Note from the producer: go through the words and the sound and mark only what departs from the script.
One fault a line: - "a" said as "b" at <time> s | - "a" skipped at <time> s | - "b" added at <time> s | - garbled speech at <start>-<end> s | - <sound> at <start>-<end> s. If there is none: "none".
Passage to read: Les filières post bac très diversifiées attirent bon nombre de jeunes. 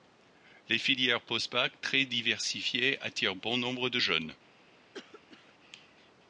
- cough at 4.9-5.5 s